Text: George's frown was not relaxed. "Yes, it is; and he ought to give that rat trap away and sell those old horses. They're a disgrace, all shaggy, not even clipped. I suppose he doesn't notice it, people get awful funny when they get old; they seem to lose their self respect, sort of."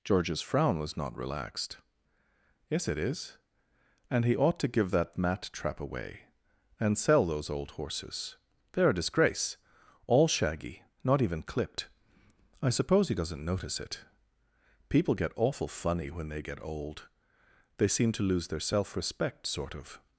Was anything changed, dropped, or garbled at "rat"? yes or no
yes